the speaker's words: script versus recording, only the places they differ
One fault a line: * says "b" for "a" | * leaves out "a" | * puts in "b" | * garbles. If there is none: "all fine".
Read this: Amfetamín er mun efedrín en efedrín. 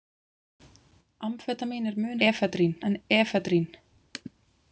all fine